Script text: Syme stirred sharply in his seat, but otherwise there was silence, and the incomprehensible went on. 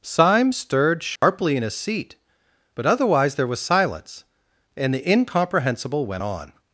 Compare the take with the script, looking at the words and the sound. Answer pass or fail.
fail